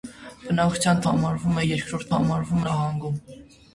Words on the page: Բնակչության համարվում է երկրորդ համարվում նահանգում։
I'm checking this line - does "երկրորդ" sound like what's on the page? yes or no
yes